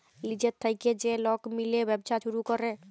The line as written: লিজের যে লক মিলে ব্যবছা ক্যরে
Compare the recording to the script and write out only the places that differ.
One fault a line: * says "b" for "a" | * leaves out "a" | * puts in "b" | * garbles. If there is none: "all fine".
* puts in "থ্যাইকে"
* puts in "ছুরু"